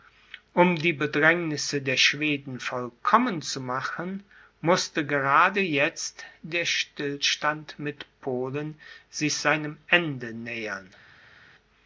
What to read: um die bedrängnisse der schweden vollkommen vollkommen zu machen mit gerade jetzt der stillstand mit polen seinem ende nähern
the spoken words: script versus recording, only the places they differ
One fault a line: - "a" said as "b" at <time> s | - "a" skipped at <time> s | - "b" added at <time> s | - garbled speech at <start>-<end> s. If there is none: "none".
- "vollkommen" skipped at 3.4 s
- "mit" said as "mußte" at 4.6 s
- "sich" added at 9.1 s